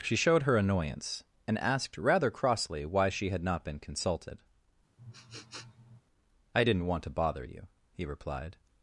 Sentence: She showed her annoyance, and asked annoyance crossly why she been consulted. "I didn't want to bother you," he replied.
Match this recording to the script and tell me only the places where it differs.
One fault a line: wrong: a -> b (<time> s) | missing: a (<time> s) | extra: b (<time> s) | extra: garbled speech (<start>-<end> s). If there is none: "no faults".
wrong: annoyance -> rather (2.0 s)
extra: had not (3.3 s)